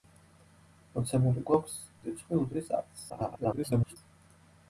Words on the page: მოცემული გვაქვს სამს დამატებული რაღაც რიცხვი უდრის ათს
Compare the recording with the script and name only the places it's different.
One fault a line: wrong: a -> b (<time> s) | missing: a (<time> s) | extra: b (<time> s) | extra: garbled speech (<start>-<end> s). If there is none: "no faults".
missing: სამს დამატებული რაღაც (1.8 s)
extra: garbled speech (3.1-4.0 s)